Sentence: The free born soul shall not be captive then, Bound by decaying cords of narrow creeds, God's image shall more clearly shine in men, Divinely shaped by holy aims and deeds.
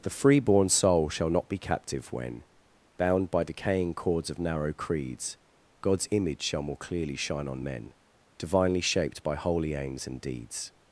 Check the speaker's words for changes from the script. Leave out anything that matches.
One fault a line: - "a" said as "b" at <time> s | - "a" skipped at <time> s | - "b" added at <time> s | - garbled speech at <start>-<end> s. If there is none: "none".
- "then" said as "when" at 2.1 s
- "in" said as "on" at 7.5 s